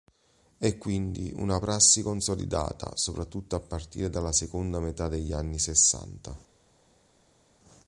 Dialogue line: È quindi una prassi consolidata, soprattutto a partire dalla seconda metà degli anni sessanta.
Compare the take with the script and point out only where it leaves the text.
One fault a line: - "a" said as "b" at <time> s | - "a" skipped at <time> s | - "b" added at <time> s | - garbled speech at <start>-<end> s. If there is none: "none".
none